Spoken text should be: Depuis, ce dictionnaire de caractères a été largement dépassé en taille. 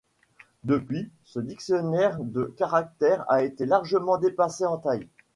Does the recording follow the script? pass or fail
pass